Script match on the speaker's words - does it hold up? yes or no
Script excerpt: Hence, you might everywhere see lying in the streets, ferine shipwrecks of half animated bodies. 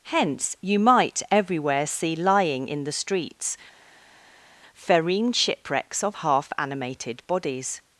yes